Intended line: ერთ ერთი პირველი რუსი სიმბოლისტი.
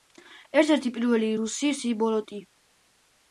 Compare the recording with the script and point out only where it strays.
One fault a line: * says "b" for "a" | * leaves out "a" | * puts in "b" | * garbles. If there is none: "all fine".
all fine